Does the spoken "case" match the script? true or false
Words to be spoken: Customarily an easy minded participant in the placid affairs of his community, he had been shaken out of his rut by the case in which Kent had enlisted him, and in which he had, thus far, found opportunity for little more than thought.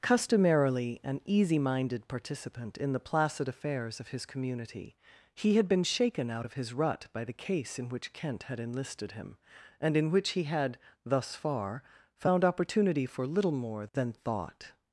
true